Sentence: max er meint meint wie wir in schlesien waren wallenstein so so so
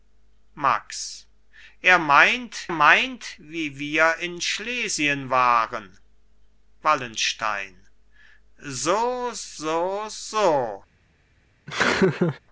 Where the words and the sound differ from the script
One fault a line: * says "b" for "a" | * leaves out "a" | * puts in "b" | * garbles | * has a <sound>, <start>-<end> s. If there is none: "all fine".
* has a laugh, 11.7-12.4 s